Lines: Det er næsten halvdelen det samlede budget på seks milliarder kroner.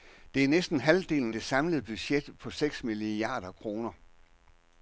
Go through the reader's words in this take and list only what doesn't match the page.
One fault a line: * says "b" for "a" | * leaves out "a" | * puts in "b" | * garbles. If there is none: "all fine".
all fine